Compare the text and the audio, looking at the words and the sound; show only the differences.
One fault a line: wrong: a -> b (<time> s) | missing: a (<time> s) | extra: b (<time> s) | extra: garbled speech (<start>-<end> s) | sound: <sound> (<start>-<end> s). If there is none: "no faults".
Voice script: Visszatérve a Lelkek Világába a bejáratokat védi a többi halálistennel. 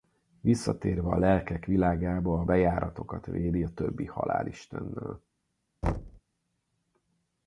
sound: thud (5.8-6.2 s)